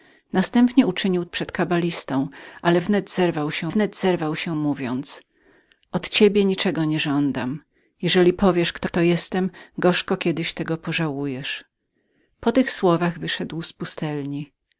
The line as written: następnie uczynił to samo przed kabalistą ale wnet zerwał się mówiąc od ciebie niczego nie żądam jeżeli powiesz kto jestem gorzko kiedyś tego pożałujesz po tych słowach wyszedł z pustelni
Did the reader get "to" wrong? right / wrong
wrong